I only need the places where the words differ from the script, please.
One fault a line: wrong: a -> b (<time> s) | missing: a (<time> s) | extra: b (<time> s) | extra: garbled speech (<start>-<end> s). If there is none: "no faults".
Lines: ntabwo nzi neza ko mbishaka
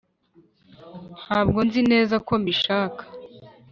no faults